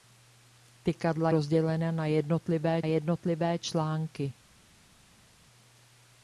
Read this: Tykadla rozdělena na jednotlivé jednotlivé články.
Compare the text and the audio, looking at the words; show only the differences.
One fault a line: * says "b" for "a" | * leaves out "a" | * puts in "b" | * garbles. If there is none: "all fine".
all fine